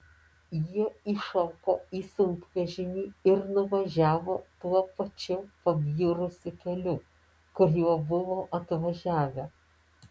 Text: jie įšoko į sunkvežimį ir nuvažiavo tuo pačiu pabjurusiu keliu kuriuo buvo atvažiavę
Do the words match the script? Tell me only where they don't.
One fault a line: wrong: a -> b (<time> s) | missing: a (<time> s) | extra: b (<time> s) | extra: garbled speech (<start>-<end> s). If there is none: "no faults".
no faults